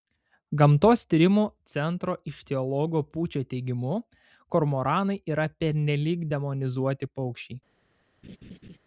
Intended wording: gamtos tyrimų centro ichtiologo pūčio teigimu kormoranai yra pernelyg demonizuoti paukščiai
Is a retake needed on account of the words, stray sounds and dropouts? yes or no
yes